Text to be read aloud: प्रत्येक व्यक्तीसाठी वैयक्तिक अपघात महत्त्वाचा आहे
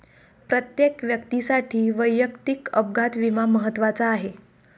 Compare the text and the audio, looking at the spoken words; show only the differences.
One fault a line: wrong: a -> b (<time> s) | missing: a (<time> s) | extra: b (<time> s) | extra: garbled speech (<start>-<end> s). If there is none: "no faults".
extra: विमा (3.2 s)